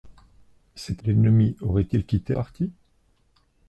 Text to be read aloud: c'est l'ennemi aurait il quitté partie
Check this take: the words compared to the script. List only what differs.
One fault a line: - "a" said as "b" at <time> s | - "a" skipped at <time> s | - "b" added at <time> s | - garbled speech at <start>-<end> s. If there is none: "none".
none